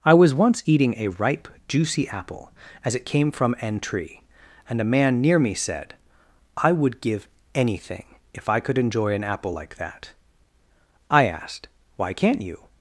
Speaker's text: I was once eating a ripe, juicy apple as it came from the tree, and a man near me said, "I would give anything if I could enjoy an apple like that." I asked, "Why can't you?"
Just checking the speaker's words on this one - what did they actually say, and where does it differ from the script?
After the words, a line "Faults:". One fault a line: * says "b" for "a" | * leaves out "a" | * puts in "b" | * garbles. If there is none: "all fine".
I was once eating a ripe, juicy apple as it came from an tree, and a man near me said, "I would give anything if I could enjoy an apple like that." I asked, "Why can't you?"
Faults:
* says "an" for "the"